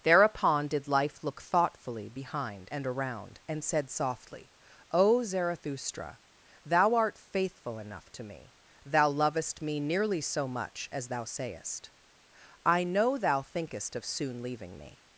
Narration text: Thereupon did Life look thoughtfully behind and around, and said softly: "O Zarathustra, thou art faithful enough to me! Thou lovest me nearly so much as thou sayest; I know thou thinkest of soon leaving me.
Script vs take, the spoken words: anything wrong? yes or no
no